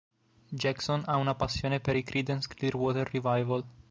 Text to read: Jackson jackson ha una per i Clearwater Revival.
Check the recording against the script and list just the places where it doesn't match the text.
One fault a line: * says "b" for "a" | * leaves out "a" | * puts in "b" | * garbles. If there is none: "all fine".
* leaves out "jackson"
* puts in "passione"
* puts in "Creedence"